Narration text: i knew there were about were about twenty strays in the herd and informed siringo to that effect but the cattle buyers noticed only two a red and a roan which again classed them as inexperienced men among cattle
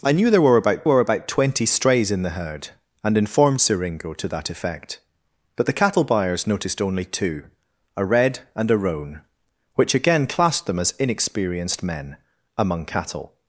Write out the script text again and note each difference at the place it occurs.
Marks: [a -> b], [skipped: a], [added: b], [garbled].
i knew there were about were about twenty strays in the herd and informed siringo to that effect but the cattle buyers noticed only two a red and a roan which again classed them as inexperienced men among cattle